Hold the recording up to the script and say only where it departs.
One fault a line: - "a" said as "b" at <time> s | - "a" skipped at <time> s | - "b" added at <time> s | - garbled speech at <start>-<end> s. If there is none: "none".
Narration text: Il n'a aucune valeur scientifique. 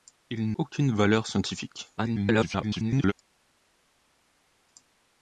- "n'a" skipped at 0.5 s
- garbled speech at 2.0-3.1 s